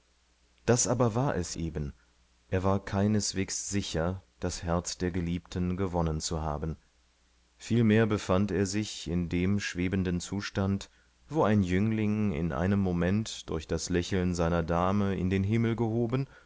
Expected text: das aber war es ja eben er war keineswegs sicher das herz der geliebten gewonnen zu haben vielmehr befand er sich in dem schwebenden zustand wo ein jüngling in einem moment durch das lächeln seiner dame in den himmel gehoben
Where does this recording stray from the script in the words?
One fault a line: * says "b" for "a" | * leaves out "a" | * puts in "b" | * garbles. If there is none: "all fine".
* leaves out "ja"